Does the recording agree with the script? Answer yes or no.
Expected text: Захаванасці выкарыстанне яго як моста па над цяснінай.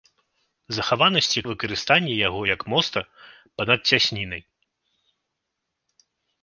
yes